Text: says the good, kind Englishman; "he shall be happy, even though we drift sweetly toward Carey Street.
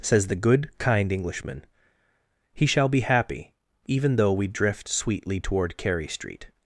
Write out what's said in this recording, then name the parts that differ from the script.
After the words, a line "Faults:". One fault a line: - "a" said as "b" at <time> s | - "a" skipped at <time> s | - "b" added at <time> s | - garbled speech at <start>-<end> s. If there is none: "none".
says the good, kind Englishman; "he shall be happy, even though we drift sweetly toward Carey Street.
Faults:
none